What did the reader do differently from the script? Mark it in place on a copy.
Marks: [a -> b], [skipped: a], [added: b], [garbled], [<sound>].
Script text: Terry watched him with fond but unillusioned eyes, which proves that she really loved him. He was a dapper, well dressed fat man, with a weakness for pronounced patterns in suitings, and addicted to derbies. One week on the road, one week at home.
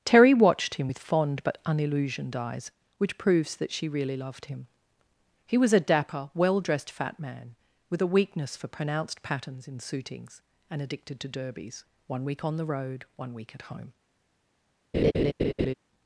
Terry watched him with fond but unillusioned eyes, which proves that she really loved him. He was a dapper, well dressed fat man, with a weakness for pronounced patterns in suitings, and addicted to derbies. One week on the road, one week at home. [laugh]